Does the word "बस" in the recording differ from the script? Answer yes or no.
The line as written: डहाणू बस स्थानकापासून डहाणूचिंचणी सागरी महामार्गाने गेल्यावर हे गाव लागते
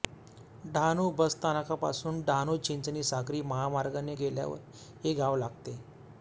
no